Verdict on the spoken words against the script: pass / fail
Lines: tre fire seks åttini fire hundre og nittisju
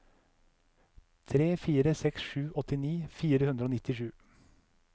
fail